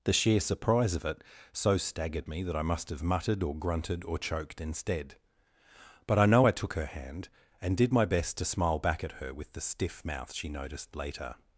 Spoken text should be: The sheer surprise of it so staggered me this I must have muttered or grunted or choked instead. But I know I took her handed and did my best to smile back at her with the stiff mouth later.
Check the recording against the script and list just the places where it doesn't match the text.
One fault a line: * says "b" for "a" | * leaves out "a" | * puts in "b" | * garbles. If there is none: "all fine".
* says "that" for "this"
* says "hand" for "handed"
* puts in "she noticed"